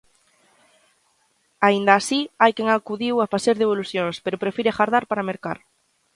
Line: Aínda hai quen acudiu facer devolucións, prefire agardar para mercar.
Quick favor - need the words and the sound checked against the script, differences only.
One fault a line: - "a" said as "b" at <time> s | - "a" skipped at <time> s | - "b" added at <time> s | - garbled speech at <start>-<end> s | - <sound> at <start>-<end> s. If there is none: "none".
- "así" added at 2.0 s
- "a" added at 3.2 s
- "pero" added at 4.2 s